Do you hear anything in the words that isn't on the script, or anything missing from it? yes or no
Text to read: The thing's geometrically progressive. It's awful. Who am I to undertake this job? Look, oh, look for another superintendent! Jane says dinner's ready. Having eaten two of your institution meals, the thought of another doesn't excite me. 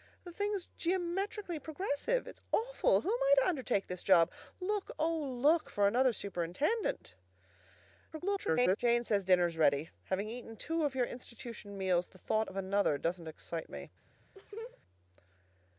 yes